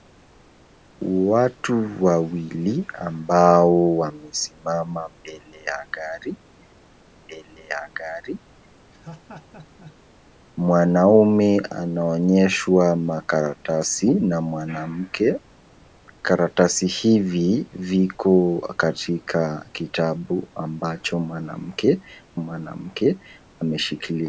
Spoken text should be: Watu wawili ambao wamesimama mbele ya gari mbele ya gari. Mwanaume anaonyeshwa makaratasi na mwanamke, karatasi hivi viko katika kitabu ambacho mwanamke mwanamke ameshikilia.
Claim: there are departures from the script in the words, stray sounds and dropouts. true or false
true